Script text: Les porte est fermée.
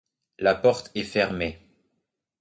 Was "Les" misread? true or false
true